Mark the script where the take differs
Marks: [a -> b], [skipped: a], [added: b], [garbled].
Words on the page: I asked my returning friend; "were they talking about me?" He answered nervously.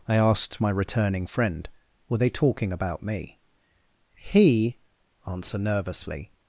I asked my returning friend; "were they talking about me?" He [answered -> answer] nervously.